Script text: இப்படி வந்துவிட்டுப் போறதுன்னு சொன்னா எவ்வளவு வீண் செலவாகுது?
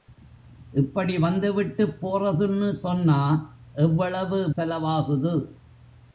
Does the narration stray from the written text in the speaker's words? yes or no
yes